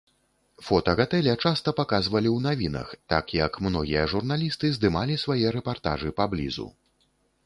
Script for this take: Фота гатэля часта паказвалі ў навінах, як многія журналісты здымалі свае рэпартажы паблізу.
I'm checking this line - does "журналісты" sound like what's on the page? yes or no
yes